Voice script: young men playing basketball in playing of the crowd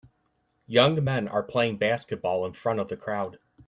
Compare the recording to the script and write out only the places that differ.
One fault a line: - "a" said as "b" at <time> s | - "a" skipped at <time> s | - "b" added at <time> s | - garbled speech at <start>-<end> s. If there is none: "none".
- "are" added at 1.3 s
- "playing" said as "front" at 2.5 s